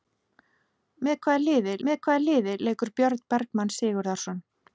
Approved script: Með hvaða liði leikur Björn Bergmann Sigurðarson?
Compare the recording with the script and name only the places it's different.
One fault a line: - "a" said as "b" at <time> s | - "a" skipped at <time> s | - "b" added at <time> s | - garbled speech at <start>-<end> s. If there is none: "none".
- "með hvaða liði" added at 1.9 s